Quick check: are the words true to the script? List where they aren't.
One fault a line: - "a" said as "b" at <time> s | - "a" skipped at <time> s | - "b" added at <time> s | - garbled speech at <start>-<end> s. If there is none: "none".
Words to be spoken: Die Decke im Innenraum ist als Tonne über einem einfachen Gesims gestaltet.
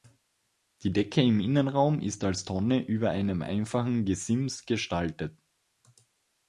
none